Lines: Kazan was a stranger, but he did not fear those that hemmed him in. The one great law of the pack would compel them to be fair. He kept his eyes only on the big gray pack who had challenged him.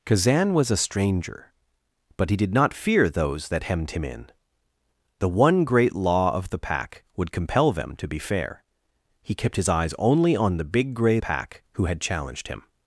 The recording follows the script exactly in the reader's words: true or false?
true